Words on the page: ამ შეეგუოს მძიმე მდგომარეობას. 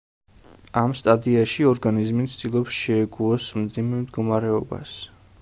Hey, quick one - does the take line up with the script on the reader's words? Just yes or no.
no